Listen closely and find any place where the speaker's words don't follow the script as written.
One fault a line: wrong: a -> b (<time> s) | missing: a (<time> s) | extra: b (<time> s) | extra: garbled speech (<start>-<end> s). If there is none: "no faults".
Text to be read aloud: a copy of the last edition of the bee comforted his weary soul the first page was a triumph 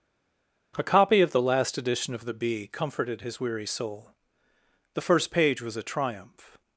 no faults